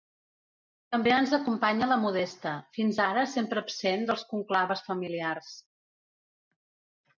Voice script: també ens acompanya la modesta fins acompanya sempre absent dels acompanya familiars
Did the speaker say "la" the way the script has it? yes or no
yes